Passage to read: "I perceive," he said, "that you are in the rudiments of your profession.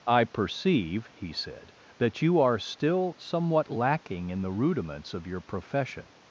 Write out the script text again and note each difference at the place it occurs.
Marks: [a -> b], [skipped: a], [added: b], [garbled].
"I perceive," he said, "that you are [added: still somewhat lacking] in the rudiments of your profession.